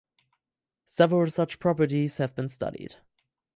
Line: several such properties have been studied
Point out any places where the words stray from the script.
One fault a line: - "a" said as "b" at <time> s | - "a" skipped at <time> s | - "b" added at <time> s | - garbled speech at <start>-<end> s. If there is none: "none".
none